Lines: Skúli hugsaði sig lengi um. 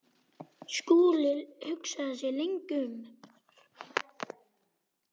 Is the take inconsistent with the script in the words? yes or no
no